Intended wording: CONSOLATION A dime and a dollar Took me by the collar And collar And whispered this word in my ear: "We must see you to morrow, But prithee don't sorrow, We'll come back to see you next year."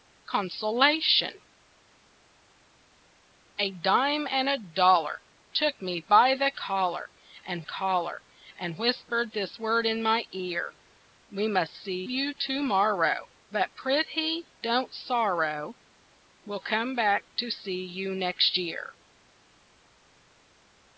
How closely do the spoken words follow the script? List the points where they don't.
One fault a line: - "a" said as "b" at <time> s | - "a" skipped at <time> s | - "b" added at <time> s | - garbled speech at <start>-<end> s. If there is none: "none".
none